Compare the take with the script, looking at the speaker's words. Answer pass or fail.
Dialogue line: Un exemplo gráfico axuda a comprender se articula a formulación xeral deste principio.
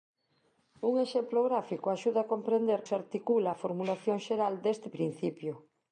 pass